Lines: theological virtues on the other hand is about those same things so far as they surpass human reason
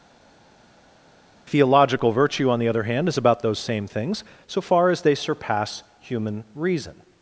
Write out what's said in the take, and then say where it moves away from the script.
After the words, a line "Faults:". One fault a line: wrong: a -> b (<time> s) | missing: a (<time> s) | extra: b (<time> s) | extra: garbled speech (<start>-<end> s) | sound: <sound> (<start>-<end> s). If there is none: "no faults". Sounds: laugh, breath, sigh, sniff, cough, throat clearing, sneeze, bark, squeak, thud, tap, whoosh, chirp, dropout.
theological virtue on the other hand is about those same things so far as they surpass human reason
Faults:
wrong: virtues -> virtue (2.1 s)